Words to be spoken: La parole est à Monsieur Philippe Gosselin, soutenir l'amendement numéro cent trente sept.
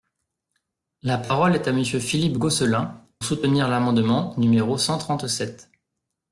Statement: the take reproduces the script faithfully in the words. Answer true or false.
true